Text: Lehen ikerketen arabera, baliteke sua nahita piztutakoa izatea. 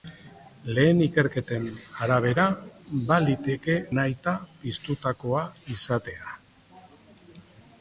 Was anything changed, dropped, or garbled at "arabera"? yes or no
no